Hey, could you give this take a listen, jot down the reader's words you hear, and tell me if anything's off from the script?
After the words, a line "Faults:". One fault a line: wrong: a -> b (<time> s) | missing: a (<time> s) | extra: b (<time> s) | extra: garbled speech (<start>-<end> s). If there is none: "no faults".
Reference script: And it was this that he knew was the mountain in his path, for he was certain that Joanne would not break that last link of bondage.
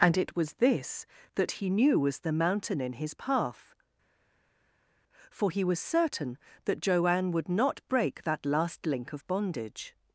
And it was this that he knew was the mountain in his path, for he was certain that Joanne would not break that last link of bondage.
Faults:
no faults